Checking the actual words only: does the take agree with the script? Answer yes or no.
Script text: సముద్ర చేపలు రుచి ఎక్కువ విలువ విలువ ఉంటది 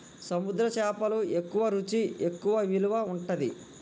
no